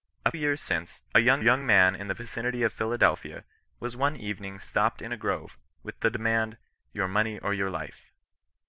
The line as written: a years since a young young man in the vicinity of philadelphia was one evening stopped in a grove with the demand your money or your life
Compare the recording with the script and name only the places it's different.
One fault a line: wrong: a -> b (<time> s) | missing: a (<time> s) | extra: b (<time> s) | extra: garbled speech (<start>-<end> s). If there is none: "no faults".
no faults